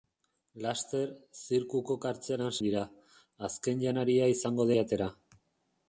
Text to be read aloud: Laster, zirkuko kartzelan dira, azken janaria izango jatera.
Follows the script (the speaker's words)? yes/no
yes